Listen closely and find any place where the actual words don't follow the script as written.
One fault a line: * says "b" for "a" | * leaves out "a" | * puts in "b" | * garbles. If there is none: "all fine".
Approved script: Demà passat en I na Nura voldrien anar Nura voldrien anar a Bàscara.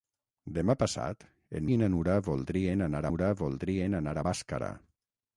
all fine